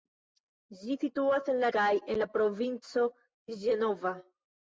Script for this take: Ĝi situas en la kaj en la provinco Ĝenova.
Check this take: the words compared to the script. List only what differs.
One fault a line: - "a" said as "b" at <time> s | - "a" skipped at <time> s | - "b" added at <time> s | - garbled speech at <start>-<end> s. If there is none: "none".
none